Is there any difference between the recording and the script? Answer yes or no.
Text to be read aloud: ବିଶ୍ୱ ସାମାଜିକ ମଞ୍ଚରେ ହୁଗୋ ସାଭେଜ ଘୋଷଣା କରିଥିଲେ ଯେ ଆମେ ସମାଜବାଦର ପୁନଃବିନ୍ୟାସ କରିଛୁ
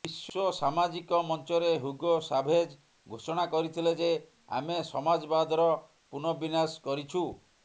no